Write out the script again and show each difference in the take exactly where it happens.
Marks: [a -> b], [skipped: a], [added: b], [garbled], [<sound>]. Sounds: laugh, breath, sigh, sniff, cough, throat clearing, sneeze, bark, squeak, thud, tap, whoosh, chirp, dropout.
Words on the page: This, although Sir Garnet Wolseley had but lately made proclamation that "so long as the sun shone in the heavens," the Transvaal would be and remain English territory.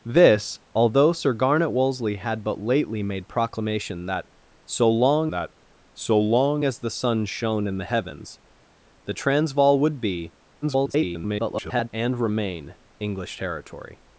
This, although Sir Garnet Wolseley had but lately made proclamation that "so long [added: that so long] as the sun shone in the heavens," the Transvaal would be [garbled] and remain English territory.